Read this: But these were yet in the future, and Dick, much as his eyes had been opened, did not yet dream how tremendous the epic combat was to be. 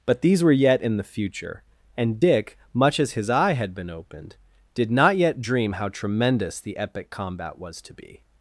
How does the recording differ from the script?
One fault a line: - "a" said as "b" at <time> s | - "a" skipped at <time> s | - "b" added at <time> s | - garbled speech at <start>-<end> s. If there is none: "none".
- "eyes" said as "eye" at 3.3 s